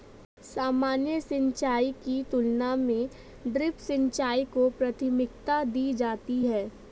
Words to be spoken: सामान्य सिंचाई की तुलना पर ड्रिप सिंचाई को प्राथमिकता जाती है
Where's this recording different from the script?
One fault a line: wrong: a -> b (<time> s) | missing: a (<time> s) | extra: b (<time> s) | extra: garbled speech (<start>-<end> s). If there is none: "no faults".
wrong: पर -> में (2.8 s)
extra: दी (5.6 s)